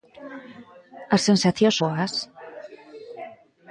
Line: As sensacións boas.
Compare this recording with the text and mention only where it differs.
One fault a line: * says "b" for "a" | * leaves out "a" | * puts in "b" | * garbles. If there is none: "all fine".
all fine